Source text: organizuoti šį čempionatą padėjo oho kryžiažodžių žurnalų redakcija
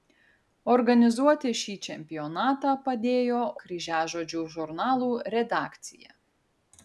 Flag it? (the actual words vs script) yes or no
yes